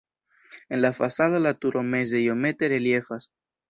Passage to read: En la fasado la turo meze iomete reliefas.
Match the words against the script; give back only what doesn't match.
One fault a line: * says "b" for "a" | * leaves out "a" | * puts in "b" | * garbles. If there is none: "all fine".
all fine